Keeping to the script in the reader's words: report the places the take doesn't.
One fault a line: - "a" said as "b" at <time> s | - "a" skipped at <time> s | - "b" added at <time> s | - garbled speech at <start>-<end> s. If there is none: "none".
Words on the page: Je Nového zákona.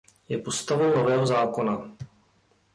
- "postavou" added at 0.3 s